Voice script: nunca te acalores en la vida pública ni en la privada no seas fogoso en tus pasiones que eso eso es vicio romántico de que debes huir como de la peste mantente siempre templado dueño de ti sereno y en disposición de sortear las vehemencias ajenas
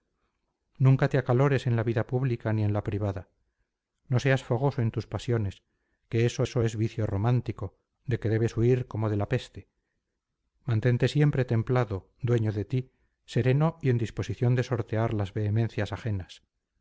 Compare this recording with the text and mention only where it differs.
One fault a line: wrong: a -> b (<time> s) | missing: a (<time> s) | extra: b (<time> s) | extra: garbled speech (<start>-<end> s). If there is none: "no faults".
no faults